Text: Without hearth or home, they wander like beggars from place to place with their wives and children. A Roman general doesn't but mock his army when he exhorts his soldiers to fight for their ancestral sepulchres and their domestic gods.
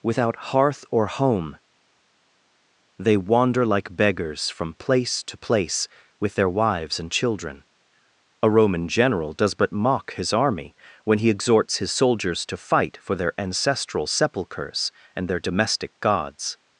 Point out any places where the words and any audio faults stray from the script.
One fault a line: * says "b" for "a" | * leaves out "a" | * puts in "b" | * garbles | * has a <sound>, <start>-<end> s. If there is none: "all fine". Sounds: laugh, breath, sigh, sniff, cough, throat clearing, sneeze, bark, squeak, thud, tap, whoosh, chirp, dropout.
* says "does" for "doesn't"